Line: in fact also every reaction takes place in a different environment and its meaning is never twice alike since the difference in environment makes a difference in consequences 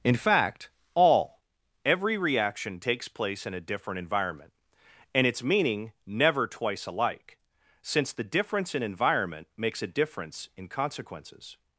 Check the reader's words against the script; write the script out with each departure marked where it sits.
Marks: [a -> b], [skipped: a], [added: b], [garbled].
in fact [also -> all] every reaction takes place in a different environment and its meaning [skipped: is] never twice alike since the difference in environment makes a difference in consequences